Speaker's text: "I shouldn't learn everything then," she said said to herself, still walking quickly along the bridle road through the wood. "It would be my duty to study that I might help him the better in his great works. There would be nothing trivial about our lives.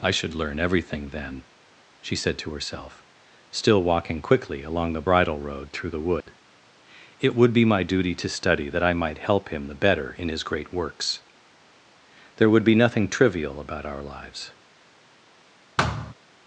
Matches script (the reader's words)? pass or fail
fail